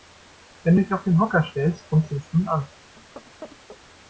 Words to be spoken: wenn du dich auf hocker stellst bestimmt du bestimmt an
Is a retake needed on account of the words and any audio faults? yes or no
yes